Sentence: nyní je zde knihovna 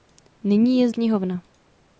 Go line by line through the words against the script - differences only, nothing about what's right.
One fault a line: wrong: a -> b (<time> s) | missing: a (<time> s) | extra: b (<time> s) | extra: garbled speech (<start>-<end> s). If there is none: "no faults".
missing: zde (0.9 s)